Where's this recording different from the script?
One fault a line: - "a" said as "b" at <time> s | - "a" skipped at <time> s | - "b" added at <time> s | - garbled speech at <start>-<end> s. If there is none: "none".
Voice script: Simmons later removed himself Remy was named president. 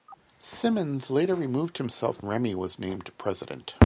none